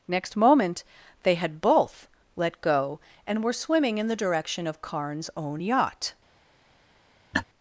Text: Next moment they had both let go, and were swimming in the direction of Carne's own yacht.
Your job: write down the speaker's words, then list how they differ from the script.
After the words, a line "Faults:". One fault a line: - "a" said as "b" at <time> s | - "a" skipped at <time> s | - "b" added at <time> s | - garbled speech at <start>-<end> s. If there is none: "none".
Next moment they had both let go, and were swimming in the direction of Carne's own yacht.
Faults:
none